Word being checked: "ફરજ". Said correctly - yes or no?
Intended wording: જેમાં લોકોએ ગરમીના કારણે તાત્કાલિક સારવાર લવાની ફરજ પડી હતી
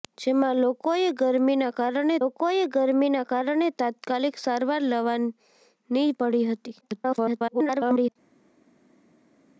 no